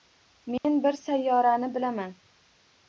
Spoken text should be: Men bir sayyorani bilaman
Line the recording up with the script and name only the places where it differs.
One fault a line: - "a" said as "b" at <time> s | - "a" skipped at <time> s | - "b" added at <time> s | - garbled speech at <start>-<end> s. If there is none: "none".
none